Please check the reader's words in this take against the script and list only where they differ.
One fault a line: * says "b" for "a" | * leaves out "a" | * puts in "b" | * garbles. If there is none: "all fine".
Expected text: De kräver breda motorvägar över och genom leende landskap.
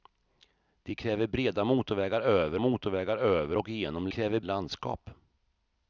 * puts in "motorvägar över"
* says "kräver" for "leende"